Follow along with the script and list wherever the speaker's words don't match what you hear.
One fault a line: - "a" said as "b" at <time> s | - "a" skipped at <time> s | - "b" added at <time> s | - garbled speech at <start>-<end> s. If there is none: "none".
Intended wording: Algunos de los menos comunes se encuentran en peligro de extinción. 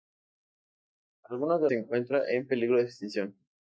- "los menos comunes" skipped at 1.7 s